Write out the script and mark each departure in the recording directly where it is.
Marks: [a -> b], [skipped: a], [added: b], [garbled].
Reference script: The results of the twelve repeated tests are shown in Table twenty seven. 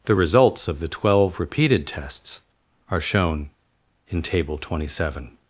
The results of the twelve repeated tests are shown in Table twenty seven.